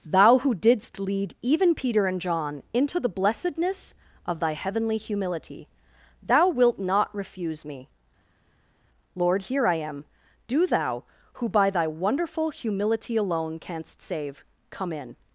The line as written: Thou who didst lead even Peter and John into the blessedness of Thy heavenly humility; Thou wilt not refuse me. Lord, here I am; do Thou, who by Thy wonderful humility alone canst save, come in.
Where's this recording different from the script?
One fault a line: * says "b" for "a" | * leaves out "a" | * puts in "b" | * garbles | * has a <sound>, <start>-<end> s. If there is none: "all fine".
all fine